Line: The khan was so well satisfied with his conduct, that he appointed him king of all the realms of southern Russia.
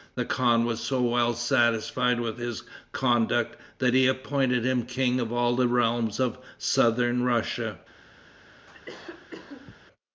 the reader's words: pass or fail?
pass